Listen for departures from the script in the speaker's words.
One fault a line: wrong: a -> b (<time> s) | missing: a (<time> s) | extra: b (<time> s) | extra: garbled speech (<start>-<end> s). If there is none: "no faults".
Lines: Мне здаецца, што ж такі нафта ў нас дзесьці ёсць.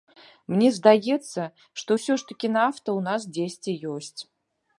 extra: ўсё (2.0 s)